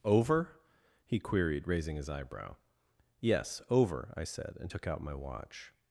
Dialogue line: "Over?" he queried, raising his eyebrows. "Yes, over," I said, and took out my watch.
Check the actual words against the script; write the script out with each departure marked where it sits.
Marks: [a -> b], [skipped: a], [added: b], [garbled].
"Over?" he queried, raising his [eyebrows. -> eyebrow] "Yes, over," I said, and took out my watch.